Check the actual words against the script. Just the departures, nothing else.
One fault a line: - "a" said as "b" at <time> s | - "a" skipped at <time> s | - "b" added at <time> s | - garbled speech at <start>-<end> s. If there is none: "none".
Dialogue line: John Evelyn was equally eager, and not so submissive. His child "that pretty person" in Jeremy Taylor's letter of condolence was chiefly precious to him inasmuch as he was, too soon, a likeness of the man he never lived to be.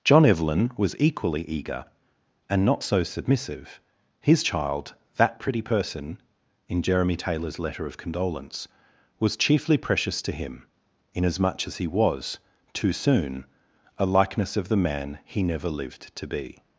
none